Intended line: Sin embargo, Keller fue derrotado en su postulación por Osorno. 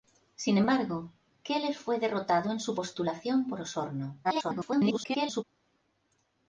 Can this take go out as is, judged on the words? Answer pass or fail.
fail